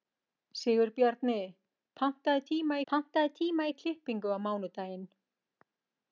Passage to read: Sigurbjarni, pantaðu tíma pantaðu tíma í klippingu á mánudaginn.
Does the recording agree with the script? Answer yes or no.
yes